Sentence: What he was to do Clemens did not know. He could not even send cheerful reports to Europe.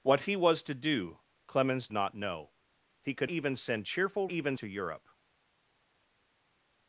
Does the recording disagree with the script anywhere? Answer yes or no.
yes